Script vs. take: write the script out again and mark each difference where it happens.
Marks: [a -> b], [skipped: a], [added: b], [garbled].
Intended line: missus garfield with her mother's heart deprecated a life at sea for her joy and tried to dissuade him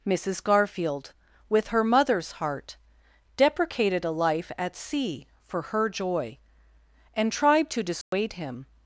missus garfield with her mother's heart deprecated a life at sea for her joy and tried to dissuade him